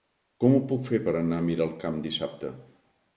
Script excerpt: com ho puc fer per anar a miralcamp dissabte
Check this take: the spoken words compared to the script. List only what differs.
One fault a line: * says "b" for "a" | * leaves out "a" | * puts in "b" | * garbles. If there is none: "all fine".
all fine